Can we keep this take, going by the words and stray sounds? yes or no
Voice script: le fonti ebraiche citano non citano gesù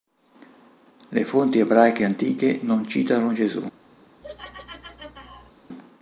no